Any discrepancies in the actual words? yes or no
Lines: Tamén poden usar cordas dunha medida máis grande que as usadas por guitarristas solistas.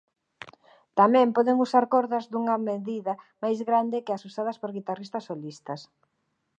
no